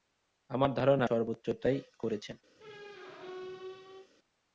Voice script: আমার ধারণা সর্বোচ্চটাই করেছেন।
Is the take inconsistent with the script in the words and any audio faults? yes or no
yes